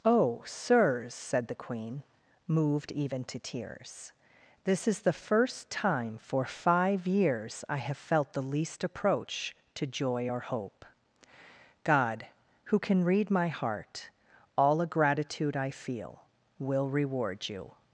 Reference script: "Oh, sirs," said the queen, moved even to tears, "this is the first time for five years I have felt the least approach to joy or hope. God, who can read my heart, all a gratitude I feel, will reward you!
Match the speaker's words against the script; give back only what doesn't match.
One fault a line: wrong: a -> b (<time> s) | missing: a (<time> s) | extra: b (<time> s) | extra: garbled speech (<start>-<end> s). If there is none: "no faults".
no faults